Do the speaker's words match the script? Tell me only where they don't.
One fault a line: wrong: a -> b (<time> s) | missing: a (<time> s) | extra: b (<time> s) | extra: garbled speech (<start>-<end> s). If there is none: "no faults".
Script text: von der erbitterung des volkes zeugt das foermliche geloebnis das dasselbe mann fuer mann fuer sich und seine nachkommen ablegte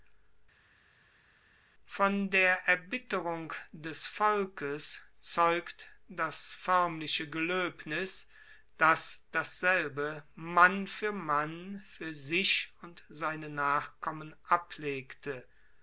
no faults